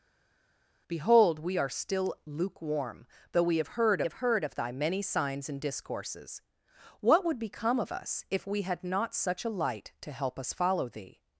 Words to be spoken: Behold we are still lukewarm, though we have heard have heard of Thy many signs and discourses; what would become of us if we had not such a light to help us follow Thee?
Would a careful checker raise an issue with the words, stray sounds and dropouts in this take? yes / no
no